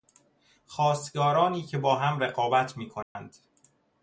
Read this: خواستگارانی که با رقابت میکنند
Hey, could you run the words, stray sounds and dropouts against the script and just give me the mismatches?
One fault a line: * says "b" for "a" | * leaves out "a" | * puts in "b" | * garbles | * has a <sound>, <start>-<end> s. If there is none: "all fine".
* puts in "هم"
* has a dropout, 3.0-3.2 s